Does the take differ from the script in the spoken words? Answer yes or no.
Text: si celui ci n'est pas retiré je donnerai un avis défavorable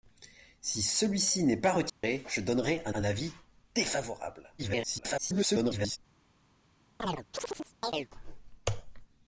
yes